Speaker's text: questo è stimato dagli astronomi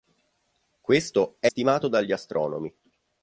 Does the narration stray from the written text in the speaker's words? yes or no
no